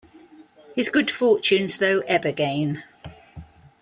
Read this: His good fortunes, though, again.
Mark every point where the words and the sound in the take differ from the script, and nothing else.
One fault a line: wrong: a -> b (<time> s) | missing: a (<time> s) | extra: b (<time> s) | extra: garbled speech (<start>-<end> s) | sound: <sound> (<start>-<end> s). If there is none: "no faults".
extra: ebb (2.1 s)